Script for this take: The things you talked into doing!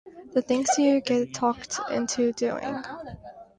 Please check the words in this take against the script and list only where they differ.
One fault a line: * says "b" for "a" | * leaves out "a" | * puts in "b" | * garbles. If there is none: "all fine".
* puts in "get"